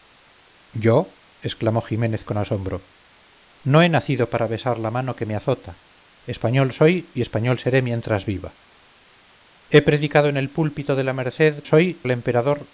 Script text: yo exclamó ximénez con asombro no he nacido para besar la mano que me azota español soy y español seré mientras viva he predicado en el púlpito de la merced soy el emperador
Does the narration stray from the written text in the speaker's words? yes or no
no